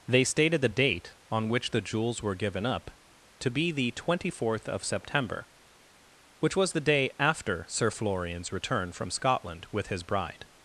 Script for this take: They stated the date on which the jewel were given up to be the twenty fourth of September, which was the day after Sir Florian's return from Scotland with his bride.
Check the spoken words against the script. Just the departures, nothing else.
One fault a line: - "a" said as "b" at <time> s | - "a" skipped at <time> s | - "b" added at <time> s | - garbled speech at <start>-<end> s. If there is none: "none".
- "jewel" said as "jewels" at 1.8 s